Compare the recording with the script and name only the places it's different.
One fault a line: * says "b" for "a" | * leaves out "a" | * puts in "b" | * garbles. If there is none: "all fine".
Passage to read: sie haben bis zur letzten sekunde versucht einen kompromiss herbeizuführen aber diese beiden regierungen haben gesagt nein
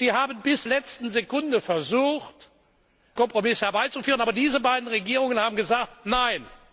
* leaves out "zur"
* leaves out "einen"